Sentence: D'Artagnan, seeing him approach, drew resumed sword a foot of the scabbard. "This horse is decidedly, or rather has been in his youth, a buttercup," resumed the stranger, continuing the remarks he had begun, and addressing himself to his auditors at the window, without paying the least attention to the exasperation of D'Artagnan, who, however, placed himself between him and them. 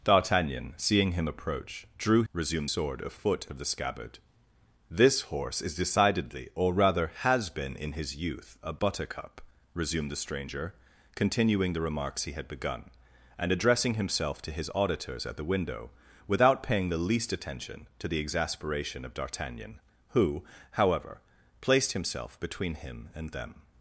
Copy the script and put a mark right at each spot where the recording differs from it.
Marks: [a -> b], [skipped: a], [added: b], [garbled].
D'Artagnan, seeing him approach, drew resumed sword a foot of the scabbard. "This horse is decidedly, or rather has been in his youth, a buttercup," resumed the stranger, continuing the remarks he had begun, and addressing himself to his auditors at the window, without paying the least attention to the exasperation of D'Artagnan, who, however, placed himself between him and them.